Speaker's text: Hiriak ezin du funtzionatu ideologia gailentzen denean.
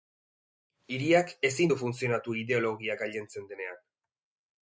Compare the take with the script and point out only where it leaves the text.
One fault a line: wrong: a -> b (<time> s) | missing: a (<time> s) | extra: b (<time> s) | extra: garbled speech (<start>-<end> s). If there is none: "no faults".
no faults